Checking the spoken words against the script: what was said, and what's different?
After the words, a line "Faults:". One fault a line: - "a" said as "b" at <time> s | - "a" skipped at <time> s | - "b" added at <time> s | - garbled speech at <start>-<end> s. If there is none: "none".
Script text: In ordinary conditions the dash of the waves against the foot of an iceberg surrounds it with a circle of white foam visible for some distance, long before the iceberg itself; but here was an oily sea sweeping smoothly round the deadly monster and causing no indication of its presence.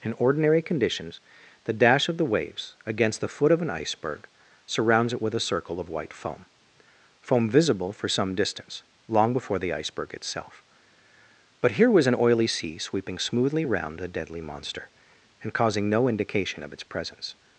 In ordinary conditions the dash of the waves against the foot of an iceberg surrounds it with a circle of white foam foam visible for some distance, long before the iceberg itself; but here was an oily sea sweeping smoothly round the deadly monster and causing no indication of its presence.
Faults:
- "foam" added at 7.2 s